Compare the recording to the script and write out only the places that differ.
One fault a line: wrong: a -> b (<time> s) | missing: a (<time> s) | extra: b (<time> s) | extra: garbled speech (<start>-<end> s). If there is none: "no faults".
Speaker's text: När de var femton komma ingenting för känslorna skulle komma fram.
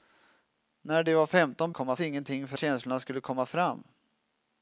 no faults